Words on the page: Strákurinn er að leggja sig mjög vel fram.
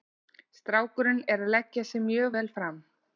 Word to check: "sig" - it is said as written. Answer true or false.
true